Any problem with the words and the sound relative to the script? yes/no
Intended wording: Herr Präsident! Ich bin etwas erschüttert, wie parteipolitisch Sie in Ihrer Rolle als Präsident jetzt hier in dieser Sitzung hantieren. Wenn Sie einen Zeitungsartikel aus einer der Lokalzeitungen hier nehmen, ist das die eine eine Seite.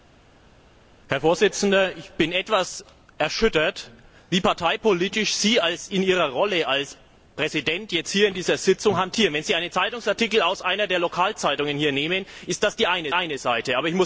no